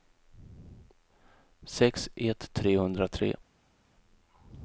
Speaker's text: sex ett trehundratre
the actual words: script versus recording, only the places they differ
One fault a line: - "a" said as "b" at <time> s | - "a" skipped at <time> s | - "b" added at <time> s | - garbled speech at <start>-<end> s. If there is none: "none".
none